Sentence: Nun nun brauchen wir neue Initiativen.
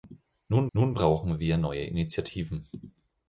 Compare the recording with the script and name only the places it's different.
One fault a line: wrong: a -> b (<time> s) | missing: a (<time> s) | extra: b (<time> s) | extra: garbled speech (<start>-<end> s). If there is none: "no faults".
no faults